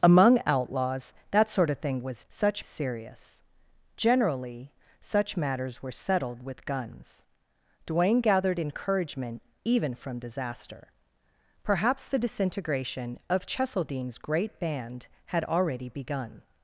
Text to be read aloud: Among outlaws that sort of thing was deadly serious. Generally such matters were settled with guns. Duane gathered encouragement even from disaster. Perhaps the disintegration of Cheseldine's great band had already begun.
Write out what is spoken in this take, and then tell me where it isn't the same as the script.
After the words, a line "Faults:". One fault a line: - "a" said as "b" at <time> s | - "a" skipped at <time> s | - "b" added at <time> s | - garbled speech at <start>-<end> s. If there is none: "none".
Among outlaws that sort of thing was such serious. Generally such matters were settled with guns. Duane gathered encouragement even from disaster. Perhaps the disintegration of Cheseldine's great band had already begun.
Faults:
- "deadly" said as "such" at 2.3 s